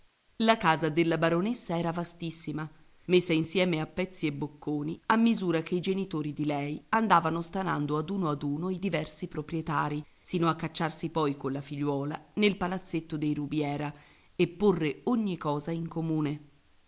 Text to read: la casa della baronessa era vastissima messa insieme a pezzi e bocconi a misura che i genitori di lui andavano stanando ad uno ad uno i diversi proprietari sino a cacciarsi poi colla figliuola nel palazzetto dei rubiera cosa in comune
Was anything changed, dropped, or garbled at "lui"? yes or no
yes